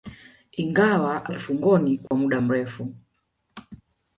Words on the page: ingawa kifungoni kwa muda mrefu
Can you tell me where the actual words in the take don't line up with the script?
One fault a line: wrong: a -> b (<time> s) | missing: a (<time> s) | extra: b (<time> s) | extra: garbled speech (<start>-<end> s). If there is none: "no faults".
no faults